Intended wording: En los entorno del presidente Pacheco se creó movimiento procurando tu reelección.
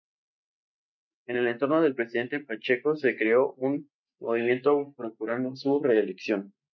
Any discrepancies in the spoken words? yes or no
yes